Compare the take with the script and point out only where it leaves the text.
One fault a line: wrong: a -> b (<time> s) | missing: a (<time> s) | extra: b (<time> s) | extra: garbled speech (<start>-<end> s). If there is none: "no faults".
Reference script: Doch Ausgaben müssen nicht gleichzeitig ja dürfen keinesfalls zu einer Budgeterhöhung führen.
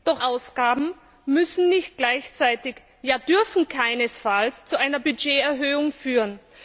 no faults